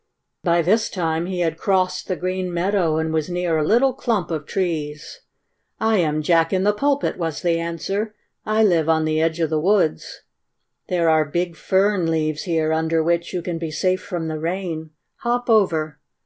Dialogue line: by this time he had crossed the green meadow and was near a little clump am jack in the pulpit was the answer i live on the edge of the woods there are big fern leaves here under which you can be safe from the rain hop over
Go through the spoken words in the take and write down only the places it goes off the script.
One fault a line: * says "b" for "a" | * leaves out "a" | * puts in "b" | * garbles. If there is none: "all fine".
* puts in "of trees i"